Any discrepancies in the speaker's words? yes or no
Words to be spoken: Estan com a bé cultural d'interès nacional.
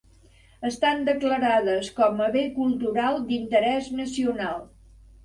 yes